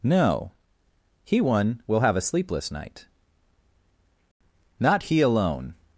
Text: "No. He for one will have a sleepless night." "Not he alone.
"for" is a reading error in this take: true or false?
true